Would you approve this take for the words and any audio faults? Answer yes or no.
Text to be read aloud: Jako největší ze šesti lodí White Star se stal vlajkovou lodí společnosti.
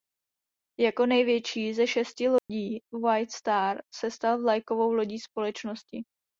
no